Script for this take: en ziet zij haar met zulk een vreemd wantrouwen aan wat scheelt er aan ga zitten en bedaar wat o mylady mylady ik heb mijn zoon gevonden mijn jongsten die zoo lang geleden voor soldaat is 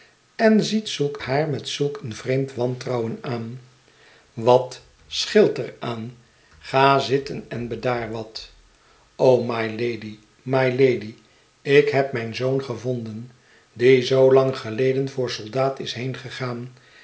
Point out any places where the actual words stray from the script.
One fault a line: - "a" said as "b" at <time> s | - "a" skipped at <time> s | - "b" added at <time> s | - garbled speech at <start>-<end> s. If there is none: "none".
- "zij" said as "zulk" at 0.9 s
- "mijn jongsten" skipped at 13.3 s